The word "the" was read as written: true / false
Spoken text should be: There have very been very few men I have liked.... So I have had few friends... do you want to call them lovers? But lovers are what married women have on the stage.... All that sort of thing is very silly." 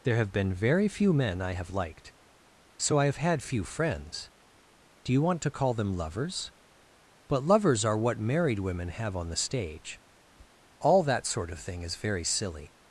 true